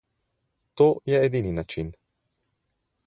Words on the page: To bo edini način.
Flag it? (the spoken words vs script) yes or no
yes